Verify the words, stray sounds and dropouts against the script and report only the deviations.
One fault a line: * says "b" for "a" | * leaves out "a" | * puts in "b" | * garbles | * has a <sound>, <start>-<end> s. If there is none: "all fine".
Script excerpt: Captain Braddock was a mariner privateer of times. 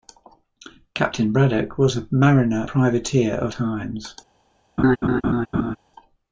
* has a laugh, 4.8-5.8 s